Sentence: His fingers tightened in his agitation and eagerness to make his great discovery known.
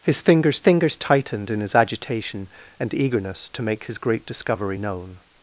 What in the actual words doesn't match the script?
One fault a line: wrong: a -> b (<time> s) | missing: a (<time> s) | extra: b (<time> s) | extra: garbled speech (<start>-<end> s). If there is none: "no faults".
extra: fingers (0.6 s)